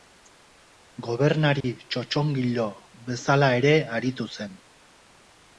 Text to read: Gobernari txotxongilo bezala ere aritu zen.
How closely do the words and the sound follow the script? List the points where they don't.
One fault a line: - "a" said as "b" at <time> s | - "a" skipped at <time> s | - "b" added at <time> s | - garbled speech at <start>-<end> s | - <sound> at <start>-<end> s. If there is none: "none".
- dropout at 1.6-1.6 s